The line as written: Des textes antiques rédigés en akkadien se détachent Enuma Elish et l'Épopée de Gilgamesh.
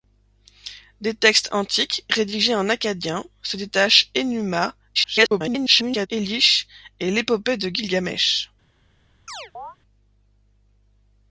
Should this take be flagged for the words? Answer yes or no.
yes